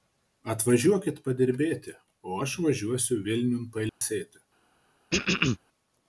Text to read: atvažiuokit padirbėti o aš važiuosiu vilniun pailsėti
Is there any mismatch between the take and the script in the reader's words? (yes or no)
no